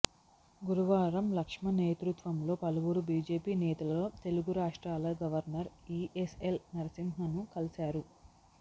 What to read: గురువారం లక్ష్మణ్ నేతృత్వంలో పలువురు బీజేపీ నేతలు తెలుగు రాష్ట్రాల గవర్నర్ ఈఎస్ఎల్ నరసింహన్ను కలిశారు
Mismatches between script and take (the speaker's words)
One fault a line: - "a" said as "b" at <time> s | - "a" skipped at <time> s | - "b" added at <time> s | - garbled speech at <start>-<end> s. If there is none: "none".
none